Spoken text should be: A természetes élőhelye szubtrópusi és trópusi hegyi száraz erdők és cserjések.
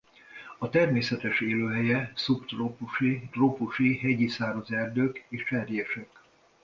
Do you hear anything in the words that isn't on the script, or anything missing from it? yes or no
yes